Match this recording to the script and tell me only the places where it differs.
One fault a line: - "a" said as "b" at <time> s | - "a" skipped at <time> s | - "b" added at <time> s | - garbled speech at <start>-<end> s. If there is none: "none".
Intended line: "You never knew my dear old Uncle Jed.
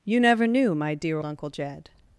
- "old" skipped at 1.2 s